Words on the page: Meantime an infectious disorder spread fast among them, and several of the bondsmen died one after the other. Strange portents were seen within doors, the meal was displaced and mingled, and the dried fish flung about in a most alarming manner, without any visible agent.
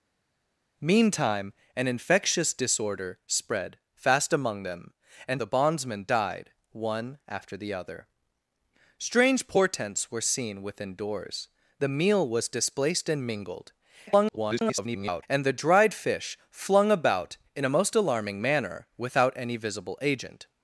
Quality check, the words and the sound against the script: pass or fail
fail